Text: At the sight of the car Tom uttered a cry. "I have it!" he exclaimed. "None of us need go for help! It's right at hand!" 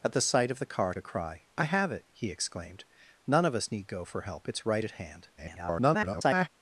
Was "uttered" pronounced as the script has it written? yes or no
no